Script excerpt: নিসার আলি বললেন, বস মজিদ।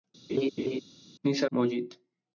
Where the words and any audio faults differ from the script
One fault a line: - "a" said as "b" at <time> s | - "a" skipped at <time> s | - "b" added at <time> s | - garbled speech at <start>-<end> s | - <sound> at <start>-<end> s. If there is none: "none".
- laugh at 0.3-0.8 s
- "আলি বললেন বস" skipped at 1.5 s